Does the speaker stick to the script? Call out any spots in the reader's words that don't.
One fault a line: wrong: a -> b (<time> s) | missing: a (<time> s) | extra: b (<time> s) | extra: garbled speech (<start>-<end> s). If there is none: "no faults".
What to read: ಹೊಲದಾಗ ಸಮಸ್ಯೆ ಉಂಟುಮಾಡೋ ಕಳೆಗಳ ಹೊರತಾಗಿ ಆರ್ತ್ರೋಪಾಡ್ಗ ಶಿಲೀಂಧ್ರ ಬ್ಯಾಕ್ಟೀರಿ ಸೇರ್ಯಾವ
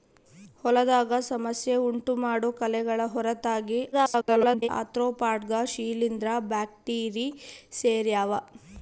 extra: garbled speech (3.9-4.7 s)